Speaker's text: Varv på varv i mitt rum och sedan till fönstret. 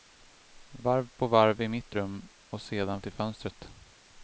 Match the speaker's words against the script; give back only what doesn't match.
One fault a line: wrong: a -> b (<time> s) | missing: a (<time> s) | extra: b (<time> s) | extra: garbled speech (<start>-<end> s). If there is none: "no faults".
no faults